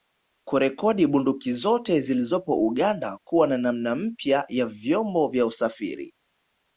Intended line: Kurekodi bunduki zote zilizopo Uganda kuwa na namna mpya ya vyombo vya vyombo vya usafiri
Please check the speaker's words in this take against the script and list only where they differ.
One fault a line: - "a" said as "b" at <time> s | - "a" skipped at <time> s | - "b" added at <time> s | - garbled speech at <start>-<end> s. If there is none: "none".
- "vyombo vya" skipped at 5.5 s